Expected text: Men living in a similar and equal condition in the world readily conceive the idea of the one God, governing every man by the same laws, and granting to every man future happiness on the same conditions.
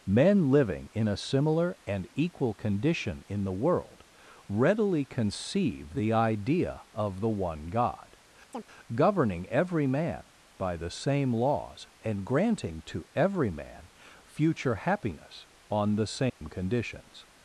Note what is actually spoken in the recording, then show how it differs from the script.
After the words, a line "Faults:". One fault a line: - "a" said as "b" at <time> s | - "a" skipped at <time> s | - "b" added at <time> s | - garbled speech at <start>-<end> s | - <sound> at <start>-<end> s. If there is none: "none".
Men living in a similar and equal condition in the world readily conceive the idea of the one God, governing every man by the same laws, and granting to every man future happiness on the same conditions.
Faults:
- chirp at 8.5-8.6 s
- dropout at 16.3-16.4 s